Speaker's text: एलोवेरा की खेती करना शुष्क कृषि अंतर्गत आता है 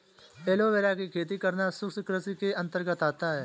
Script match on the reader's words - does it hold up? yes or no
no